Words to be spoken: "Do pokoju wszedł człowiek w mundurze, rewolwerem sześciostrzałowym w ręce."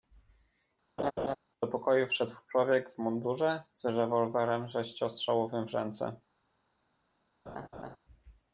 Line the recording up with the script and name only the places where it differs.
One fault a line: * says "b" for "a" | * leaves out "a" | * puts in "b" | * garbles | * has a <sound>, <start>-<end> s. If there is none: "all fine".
* has a laugh, 1.0-1.4 s
* puts in "z"
* has a laugh, 7.5-8.0 s